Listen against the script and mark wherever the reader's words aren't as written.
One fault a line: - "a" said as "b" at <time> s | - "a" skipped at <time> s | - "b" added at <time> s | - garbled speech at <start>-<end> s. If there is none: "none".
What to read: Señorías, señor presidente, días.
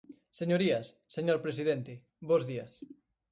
- "bos" added at 2.3 s